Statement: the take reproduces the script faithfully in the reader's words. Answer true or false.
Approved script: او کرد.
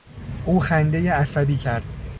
false